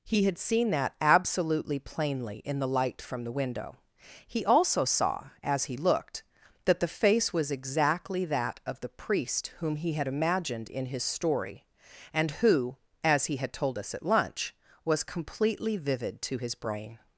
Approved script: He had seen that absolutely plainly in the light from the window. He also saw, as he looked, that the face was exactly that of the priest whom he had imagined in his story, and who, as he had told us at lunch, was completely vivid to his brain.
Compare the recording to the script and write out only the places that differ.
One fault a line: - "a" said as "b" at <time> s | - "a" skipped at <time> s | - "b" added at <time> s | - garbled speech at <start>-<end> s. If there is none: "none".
none